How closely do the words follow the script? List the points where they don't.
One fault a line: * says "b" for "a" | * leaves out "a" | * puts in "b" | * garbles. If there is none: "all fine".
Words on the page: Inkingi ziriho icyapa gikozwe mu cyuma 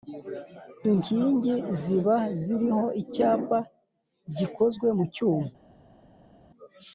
* puts in "ziba"